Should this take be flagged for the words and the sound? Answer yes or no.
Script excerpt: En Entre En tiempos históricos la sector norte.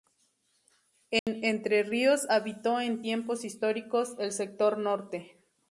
yes